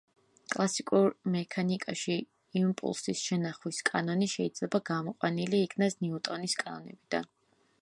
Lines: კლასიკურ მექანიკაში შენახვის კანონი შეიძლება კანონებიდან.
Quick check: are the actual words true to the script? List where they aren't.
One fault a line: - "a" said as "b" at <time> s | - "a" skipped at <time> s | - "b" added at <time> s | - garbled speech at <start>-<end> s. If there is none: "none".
- "იმპულსის" added at 2.6 s
- "გამოყვანილი იქნას ნიუტონის" added at 4.9 s